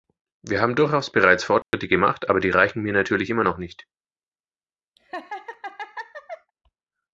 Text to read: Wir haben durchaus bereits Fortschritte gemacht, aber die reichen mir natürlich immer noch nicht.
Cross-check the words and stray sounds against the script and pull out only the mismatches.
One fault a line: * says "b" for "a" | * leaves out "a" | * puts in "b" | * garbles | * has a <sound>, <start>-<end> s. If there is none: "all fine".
* has a dropout, 1.6-1.7 s
* has a laugh, 5.0-6.5 s